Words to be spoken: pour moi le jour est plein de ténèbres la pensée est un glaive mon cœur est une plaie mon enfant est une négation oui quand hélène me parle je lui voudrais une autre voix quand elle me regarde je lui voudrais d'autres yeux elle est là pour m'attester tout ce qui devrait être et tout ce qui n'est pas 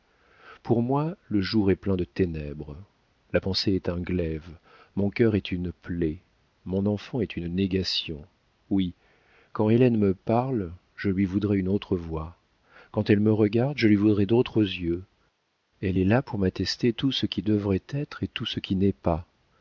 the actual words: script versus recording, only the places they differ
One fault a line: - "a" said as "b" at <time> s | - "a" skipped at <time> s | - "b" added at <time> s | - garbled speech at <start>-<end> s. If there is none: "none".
none